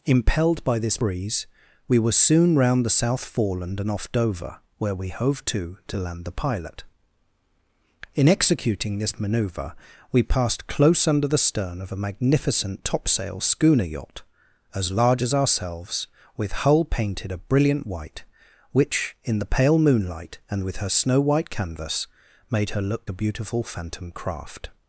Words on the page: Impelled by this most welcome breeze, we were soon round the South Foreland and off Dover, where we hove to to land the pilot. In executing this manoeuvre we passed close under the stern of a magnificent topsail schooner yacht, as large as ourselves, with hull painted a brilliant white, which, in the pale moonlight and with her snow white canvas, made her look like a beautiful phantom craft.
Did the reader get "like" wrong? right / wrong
wrong